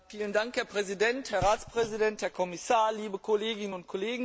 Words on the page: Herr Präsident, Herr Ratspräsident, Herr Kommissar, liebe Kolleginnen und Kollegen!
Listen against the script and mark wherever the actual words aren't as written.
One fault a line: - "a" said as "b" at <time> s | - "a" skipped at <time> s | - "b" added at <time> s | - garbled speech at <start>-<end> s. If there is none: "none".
none